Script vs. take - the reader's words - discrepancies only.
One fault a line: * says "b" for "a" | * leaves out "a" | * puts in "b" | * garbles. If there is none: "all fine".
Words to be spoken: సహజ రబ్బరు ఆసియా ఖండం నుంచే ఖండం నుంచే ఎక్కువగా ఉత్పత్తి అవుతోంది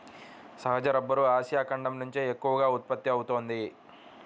* leaves out "ఖండం నుంచే"